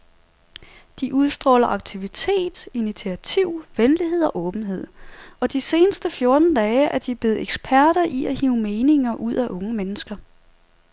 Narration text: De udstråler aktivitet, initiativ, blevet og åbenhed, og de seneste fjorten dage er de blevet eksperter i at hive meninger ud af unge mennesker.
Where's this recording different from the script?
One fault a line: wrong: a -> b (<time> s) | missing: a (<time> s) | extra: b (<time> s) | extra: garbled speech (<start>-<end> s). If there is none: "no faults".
wrong: blevet -> venlighed (3.8 s)